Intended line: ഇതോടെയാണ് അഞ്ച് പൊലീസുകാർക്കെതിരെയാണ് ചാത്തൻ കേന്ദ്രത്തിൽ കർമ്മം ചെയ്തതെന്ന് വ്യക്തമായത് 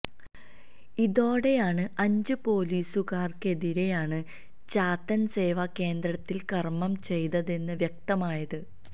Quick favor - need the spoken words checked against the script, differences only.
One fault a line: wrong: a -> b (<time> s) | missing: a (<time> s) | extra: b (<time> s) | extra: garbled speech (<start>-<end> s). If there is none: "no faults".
extra: സേവാ (5.3 s)